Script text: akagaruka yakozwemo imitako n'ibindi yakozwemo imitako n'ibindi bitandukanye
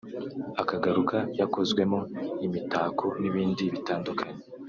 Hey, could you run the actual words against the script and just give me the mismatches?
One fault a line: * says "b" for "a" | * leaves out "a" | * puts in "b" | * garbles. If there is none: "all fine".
* leaves out "yakozwemo imitako n'ibindi"